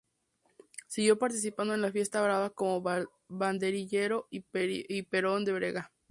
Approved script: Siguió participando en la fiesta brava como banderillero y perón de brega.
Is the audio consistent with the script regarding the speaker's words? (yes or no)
yes